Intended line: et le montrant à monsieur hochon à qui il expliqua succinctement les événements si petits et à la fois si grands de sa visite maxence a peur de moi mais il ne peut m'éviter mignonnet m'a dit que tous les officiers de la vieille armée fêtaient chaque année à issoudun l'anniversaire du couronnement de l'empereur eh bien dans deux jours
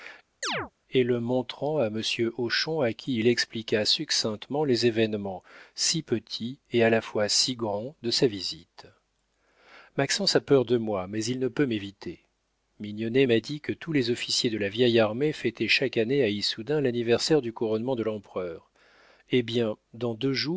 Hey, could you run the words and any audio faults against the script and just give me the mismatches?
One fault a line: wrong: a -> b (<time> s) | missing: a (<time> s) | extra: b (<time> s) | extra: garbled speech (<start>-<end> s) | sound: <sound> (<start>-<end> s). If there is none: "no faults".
sound: chirp (0.4-0.7 s)